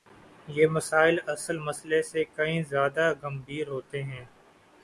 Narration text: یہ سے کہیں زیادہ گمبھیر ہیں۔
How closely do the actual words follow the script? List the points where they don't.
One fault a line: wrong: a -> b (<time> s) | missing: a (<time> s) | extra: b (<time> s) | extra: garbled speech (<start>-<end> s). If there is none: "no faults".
extra: مسائل اصل مسئلے (0.7 s)
extra: ہوتے (3.7 s)